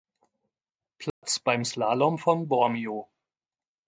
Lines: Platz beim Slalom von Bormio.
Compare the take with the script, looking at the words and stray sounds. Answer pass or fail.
fail